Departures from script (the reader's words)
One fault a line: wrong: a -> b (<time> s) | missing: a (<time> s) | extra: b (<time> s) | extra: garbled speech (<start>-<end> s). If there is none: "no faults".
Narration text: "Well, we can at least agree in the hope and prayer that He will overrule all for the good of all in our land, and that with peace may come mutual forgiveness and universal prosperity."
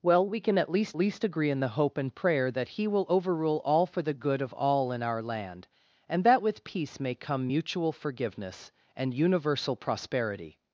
extra: least (1.0 s)